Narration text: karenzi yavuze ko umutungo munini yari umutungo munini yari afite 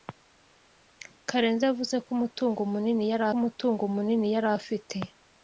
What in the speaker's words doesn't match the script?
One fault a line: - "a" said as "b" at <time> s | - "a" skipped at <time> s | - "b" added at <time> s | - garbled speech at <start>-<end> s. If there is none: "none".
none